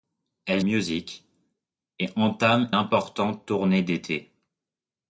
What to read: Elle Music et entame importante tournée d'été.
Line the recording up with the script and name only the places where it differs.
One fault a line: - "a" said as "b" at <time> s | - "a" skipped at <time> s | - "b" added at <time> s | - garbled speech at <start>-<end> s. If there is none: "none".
none